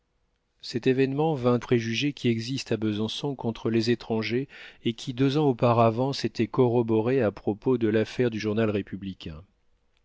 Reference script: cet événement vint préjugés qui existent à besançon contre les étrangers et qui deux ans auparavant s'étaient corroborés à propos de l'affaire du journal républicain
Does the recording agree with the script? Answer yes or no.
yes